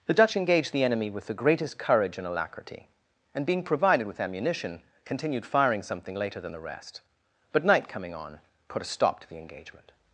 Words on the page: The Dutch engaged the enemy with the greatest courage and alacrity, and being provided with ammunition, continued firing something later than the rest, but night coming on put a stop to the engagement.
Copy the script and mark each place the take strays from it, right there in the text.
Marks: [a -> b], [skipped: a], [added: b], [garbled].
The Dutch engaged the enemy with the greatest courage and alacrity, and being provided with ammunition, continued firing something later than the rest, but night coming on put a stop to the engagement.